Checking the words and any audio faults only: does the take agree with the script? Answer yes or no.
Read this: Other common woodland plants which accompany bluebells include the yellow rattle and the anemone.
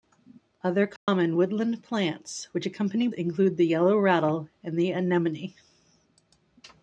no